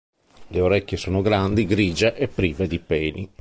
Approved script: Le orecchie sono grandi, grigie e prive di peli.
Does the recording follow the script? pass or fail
pass